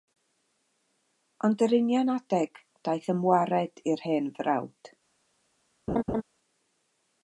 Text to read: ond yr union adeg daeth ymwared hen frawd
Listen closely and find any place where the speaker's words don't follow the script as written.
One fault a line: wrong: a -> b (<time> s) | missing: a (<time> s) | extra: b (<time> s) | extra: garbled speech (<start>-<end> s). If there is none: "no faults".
extra: i'r (3.9 s)